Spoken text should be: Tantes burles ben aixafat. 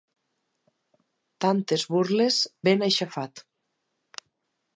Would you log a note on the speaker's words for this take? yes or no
no